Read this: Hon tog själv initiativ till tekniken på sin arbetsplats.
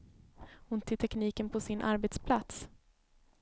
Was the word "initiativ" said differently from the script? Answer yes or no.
yes